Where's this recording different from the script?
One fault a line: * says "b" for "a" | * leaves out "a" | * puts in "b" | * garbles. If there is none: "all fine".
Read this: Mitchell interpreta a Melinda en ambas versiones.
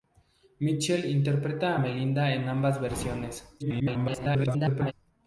* garbles